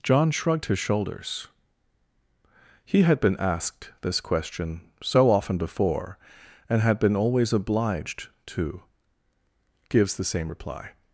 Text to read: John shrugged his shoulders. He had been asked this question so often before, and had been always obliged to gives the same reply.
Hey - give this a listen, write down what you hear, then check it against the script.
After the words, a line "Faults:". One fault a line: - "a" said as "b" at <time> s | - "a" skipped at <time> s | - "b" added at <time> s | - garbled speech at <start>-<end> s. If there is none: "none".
John shrugged his shoulders. He had been asked this question so often before, and had been always obliged to gives the same reply.
Faults:
none